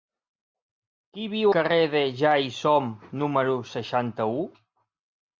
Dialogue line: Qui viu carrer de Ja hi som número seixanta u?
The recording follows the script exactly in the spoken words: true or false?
true